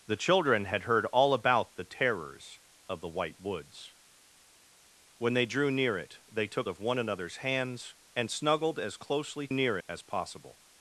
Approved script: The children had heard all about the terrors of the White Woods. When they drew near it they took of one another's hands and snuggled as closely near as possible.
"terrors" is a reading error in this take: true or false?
false